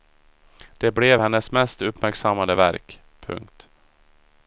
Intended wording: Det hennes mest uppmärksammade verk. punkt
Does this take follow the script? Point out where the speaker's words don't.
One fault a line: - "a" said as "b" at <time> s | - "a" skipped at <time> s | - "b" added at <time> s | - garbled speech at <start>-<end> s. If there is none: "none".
- "blev" added at 0.9 s